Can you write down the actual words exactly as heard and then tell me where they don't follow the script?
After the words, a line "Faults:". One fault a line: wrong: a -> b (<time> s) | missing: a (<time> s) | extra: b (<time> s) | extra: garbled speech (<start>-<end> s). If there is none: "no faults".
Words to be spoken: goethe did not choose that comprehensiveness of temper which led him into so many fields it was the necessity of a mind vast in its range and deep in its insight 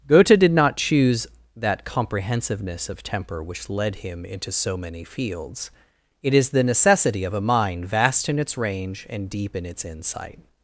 goethe did not choose that comprehensiveness of temper which led him into so many fields it is the necessity of a mind vast in its range and deep in its insight
Faults:
wrong: was -> is (6.3 s)